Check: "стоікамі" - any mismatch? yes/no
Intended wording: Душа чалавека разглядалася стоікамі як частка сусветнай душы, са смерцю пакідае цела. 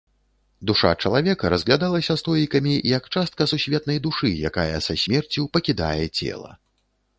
no